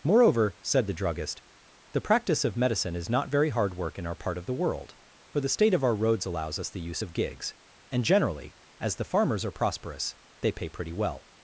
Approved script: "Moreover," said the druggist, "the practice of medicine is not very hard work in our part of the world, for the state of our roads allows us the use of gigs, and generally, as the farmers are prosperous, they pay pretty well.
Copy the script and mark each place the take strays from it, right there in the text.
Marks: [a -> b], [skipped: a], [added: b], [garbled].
"Moreover," said the druggist, "the practice of medicine is not very hard work in our part of the world, for the state of our roads allows us the use of gigs, and generally, as the farmers are prosperous, they pay pretty well.